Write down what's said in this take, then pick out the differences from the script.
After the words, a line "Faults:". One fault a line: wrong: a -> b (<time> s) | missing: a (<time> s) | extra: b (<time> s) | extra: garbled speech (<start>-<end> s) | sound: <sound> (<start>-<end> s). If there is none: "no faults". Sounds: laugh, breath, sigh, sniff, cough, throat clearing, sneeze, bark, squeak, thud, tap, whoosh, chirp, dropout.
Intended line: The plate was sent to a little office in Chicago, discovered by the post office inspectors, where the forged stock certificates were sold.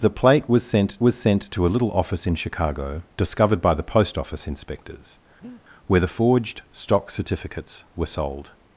The plate was sent was sent to a little office in Chicago, discovered by the post office inspectors, where the forged stock certificates were sold.
Faults:
extra: was sent (1.0 s)
sound: breath (5.4-5.6 s)